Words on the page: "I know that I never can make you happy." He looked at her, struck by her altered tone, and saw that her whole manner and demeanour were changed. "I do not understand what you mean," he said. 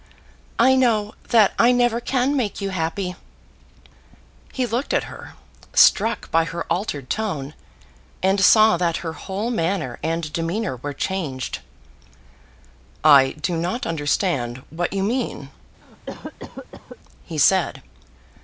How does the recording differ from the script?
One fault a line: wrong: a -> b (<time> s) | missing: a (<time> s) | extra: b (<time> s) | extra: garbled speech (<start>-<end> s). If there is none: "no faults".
no faults